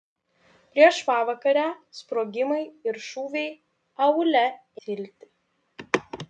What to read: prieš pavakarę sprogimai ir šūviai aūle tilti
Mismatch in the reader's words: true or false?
false